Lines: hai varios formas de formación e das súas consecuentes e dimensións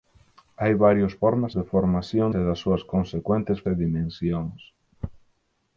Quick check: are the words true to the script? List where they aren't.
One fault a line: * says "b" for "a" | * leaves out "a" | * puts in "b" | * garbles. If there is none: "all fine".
all fine